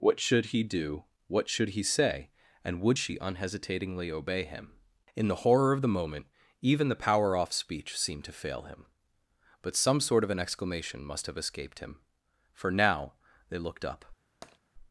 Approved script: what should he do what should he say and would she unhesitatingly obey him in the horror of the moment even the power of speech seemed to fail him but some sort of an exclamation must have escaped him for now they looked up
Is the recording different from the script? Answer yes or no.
yes